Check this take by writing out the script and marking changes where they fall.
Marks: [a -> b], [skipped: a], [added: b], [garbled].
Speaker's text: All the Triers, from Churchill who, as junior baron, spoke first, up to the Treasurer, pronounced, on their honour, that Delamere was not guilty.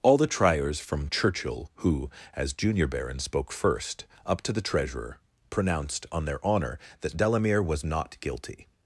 All the Triers, from Churchill who, as junior baron, spoke first, up to the Treasurer, pronounced, on their honour, that Delamere was not guilty.